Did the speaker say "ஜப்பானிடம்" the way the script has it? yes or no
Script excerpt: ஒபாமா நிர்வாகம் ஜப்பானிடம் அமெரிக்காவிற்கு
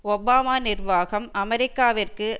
no